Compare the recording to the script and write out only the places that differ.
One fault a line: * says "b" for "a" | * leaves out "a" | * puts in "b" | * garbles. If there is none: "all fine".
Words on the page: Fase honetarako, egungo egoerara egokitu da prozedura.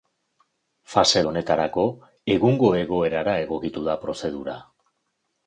all fine